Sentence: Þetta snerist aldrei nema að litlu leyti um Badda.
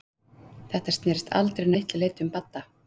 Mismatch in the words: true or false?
true